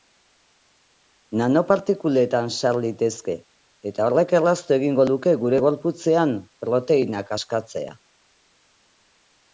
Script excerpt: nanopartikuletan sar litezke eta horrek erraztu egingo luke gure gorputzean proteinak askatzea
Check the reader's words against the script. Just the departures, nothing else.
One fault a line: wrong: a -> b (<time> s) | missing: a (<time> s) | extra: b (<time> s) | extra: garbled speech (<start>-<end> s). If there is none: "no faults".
no faults